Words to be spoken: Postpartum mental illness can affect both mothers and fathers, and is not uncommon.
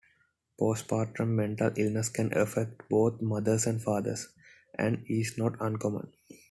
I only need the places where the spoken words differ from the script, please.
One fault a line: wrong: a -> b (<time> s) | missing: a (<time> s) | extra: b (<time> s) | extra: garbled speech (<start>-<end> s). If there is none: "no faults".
no faults